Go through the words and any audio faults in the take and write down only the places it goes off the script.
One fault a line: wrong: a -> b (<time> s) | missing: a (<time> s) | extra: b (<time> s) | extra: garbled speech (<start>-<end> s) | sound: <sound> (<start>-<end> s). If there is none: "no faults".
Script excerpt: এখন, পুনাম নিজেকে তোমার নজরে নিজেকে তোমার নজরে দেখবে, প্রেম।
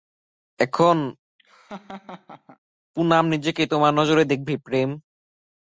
sound: laugh (1.4-2.6 s)
missing: নিজেকে তোমার নজরে (4.2 s)